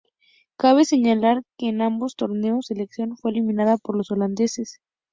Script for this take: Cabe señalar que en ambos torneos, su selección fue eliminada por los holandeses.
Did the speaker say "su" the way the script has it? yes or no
no